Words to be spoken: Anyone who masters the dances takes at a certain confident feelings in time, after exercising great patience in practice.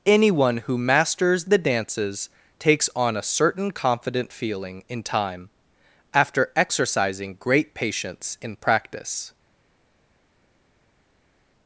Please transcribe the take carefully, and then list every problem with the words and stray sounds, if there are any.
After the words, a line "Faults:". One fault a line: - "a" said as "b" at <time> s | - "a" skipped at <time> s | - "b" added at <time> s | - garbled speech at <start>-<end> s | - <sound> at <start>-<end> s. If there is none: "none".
Anyone who masters the dances takes on a certain confident feeling in time, after exercising great patience in practice.
Faults:
- "at" said as "on" at 2.9 s
- "feelings" said as "feeling" at 4.3 s